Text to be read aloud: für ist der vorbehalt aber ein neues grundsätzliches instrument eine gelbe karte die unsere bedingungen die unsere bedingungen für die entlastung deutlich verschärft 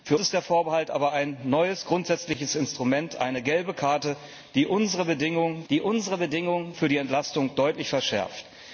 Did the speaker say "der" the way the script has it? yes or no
yes